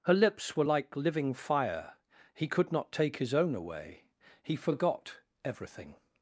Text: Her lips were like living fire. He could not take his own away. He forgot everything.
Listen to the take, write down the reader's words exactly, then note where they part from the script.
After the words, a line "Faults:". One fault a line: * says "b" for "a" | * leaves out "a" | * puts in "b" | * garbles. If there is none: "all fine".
Her lips were like living fire. He could not take his own away. He forgot everything.
Faults:
all fine